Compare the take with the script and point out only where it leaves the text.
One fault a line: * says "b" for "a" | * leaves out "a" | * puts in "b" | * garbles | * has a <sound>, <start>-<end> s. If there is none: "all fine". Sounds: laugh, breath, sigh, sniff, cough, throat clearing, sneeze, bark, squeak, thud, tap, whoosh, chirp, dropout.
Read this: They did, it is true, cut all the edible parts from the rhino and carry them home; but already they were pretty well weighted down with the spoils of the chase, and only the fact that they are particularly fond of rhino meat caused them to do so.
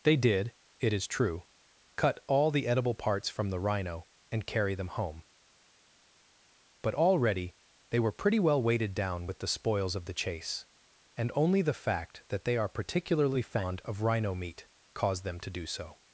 all fine